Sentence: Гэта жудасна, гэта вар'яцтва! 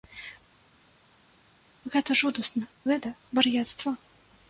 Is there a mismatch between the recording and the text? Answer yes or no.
no